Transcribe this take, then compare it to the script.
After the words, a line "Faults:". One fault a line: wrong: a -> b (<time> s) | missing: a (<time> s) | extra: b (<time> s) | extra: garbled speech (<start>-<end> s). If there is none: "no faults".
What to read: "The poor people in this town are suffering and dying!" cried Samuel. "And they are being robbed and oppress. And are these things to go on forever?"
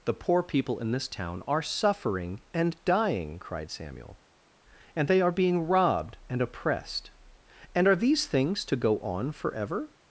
"The poor people in this town are suffering and dying!" cried Samuel. "And they are being robbed and oppressed. And are these things to go on forever?"
Faults:
wrong: oppress -> oppressed (6.4 s)